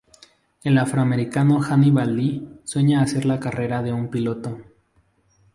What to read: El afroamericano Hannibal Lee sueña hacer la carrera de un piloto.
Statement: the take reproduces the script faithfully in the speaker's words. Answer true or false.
true